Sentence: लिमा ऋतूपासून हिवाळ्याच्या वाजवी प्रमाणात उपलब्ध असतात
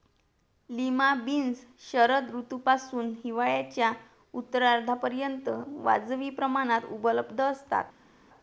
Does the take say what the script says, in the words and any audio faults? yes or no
no